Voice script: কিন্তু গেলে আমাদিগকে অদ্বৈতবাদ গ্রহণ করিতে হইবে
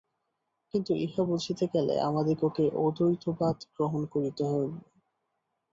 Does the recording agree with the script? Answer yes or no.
no